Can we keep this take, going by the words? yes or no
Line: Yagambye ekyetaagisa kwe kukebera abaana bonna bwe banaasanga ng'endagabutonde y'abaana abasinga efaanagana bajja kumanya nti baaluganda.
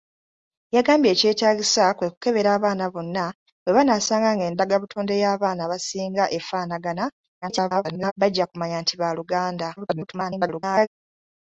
no